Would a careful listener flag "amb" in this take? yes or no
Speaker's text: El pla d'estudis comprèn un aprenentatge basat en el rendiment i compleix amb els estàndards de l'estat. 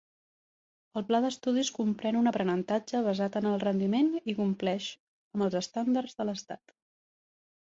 no